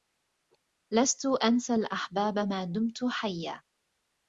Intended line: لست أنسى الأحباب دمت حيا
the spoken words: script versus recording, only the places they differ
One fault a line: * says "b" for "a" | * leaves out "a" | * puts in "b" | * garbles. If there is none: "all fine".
* puts in "ما"